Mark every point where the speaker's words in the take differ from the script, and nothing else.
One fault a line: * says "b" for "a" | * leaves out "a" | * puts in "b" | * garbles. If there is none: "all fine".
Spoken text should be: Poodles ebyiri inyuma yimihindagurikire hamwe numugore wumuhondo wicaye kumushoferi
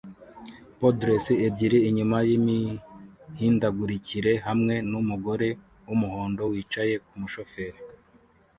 all fine